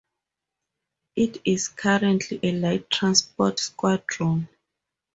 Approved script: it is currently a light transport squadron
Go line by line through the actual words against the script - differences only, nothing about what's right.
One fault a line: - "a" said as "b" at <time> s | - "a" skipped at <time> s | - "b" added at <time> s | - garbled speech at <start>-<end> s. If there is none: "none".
none